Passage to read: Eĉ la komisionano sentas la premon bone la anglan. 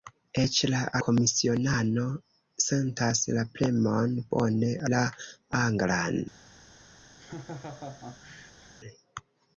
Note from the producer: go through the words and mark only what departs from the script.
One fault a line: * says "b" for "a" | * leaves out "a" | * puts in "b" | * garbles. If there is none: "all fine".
all fine